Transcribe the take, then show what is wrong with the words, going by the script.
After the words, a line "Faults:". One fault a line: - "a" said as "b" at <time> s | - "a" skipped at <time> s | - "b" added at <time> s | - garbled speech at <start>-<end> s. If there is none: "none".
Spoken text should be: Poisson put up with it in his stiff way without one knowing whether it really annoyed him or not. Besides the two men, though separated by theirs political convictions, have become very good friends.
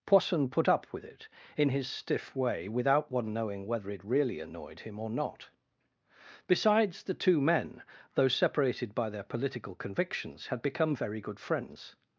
Poisson put up with it in his stiff way without one knowing whether it really annoyed him or not. Besides the two men, though separated by their political convictions, had become very good friends.
Faults:
- "theirs" said as "their" at 9.1 s
- "have" said as "had" at 10.5 s